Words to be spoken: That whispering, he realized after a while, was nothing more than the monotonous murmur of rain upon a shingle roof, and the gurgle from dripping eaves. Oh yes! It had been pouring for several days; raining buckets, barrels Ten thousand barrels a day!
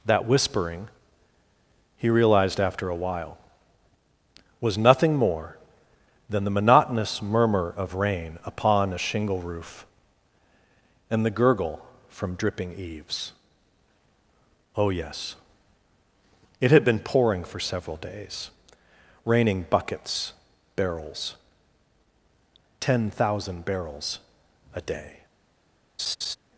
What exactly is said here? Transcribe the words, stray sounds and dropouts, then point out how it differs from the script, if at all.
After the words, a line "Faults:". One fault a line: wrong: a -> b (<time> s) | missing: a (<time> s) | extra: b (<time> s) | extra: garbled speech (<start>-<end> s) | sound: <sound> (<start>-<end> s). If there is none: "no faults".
That whispering, he realized after a while, was nothing more than the monotonous murmur of rain upon a shingle roof, and the gurgle from dripping eaves. Oh yes! It had been pouring for several days; raining buckets, barrels Ten thousand barrels a day!
Faults:
sound: laugh (26.0-26.4 s)